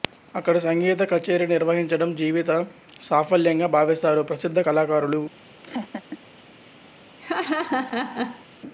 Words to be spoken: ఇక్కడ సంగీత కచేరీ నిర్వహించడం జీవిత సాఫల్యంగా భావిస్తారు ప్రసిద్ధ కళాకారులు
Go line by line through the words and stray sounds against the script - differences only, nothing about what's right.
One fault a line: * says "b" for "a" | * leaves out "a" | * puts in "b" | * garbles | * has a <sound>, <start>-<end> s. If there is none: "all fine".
* says "అక్కడ" for "ఇక్కడ"
* has a laugh, 5.6-6.2 s
* has a laugh, 7.2-8.5 s